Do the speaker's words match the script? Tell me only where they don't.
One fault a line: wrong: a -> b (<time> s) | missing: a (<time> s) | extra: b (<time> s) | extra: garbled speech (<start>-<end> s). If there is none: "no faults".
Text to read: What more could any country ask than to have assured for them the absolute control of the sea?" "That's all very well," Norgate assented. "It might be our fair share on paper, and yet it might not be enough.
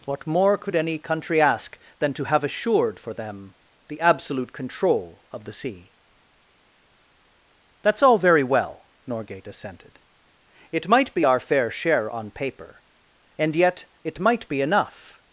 missing: not (14.5 s)